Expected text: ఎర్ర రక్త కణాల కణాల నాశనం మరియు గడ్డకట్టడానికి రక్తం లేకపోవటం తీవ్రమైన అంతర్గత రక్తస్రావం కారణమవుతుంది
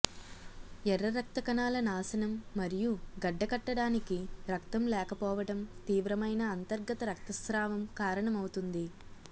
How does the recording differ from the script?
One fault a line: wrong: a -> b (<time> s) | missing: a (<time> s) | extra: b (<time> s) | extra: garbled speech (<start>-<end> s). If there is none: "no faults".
missing: కణాల (1.8 s)